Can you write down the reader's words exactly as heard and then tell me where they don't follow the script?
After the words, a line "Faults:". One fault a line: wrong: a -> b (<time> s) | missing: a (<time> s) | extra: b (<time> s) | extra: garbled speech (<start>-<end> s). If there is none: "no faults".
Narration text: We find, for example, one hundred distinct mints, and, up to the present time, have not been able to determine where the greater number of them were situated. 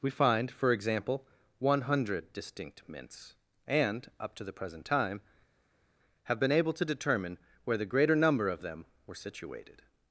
We find, for example, one hundred distinct mints, and, up to the present time, have been able to determine where the greater number of them were situated.
Faults:
missing: not (6.4 s)